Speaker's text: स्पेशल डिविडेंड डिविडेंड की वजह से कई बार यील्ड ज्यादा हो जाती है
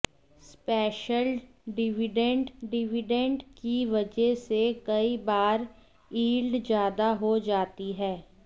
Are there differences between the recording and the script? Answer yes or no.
no